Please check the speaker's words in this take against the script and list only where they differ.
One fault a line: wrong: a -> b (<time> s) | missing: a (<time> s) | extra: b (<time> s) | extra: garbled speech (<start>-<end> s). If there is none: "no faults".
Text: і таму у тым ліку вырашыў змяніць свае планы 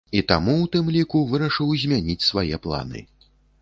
no faults